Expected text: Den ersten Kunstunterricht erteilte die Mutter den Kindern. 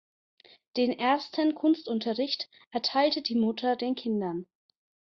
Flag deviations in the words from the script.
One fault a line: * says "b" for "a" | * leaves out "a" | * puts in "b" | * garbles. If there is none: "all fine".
all fine